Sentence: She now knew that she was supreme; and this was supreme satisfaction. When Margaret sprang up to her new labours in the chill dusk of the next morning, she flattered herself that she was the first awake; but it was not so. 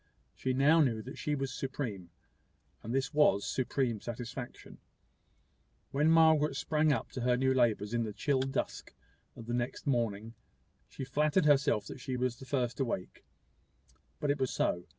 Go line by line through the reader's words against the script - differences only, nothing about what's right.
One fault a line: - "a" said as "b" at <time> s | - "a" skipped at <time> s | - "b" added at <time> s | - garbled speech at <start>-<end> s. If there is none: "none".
- "not" skipped at 14.5 s